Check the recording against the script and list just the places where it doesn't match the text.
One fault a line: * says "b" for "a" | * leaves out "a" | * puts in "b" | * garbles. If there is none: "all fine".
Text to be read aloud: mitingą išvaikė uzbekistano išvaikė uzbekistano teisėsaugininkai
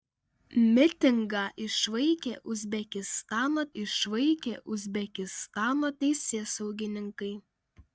all fine